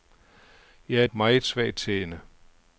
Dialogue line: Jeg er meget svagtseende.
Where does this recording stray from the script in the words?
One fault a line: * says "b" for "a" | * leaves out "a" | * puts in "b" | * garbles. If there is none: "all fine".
all fine